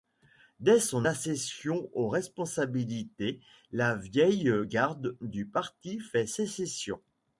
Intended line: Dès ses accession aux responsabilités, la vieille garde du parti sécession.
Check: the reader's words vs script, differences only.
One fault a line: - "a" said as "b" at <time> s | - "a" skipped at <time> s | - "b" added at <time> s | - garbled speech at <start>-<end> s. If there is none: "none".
- "ses" said as "son" at 0.8 s
- "fait" added at 6.0 s